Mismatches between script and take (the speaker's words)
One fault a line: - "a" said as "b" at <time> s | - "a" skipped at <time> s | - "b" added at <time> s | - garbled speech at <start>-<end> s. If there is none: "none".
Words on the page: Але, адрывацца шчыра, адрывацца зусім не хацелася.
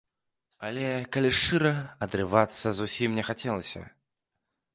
- "адрывацца" said as "калі" at 1.1 s